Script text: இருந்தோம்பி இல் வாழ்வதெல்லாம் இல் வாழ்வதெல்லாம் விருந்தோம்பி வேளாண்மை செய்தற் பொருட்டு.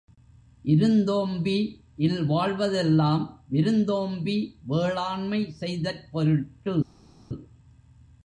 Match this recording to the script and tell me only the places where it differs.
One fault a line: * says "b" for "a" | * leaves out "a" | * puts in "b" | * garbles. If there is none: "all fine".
* leaves out "இல் வாழ்வதெல்லாம்"